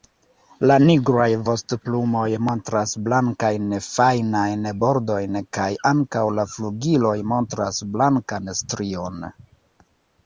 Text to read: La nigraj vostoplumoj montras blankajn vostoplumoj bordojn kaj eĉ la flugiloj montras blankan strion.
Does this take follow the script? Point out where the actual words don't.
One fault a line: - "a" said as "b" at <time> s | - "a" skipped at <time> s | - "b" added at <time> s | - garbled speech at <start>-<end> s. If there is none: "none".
- "vostoplumoj" said as "fajnajn" at 3.9 s
- "eĉ" said as "ankaŭ" at 5.9 s